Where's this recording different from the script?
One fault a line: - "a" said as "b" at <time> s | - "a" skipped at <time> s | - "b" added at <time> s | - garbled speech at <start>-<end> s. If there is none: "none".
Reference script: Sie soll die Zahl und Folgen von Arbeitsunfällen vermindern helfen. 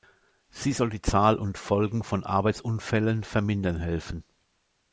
none